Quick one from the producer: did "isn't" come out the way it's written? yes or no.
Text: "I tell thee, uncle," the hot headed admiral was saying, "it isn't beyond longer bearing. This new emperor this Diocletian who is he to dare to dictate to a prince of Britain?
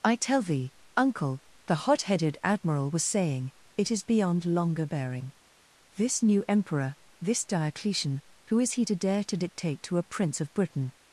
no